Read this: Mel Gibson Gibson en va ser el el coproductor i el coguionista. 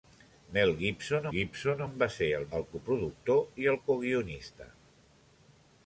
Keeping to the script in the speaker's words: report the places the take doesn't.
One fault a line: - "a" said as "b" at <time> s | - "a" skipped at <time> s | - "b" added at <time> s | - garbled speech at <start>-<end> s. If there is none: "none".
none